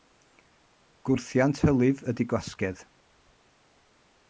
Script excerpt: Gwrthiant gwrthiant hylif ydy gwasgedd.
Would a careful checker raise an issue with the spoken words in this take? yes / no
yes